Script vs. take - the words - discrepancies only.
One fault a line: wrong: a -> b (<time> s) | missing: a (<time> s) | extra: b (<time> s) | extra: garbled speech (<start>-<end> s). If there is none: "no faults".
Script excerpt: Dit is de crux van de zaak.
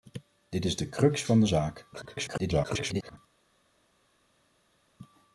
extra: garbled speech (1.9-3.2 s)